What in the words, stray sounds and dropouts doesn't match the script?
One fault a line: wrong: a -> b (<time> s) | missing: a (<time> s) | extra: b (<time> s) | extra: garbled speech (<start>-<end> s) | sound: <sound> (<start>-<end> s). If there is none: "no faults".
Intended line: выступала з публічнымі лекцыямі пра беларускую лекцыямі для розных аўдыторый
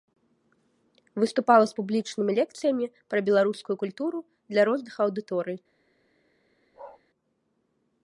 wrong: лекцыямі -> культуру (3.8 s)
sound: bark (6.7-7.0 s)